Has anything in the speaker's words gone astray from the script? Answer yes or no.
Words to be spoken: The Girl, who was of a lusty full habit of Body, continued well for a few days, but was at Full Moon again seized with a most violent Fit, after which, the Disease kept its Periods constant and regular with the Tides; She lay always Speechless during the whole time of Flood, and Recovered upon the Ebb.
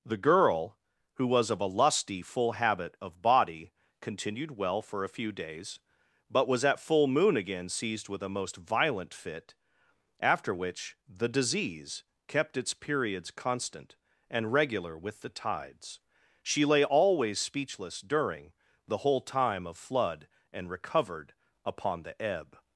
no